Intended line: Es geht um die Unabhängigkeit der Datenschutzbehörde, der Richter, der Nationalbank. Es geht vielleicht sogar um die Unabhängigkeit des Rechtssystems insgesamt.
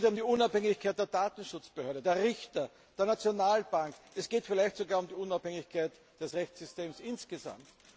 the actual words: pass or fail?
pass